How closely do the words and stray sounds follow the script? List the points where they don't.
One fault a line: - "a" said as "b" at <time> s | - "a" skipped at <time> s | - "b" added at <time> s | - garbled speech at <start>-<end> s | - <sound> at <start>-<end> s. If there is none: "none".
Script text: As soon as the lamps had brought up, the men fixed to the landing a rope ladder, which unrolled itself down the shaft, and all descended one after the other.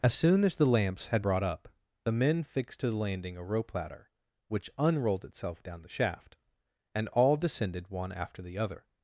none